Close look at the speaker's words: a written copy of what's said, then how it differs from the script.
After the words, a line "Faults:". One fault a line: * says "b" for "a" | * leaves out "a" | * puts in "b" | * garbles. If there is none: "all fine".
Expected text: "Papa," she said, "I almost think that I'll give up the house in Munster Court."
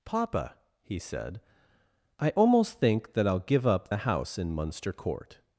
"Papa," he said, "I almost think that I'll give up the house in Munster Court."
Faults:
* says "he" for "she"